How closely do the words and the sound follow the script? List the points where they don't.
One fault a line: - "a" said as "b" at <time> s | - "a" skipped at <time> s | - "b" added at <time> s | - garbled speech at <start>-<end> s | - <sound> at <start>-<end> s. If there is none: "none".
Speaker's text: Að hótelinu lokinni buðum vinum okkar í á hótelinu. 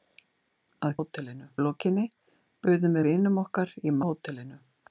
none